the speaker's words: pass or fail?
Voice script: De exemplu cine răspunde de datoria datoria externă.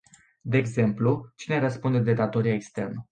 fail